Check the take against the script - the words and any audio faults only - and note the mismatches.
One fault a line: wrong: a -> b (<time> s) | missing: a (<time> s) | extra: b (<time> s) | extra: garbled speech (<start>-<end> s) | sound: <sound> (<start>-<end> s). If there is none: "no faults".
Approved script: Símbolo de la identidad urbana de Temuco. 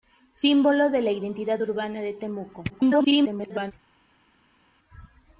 extra: garbled speech (2.7-3.7 s)